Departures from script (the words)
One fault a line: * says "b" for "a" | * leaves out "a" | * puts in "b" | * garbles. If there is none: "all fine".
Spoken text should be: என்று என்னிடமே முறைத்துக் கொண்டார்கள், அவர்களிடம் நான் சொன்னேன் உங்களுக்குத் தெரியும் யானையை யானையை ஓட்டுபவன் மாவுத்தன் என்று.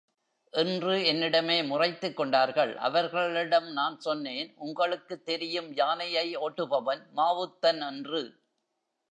* leaves out "யானையை"